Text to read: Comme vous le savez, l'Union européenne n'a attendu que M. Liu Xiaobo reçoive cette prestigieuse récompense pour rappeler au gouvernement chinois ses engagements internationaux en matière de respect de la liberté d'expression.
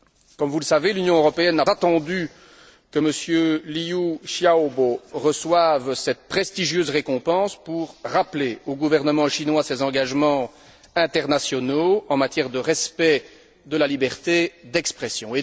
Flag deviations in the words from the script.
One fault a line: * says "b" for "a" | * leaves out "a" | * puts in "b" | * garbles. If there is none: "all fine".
all fine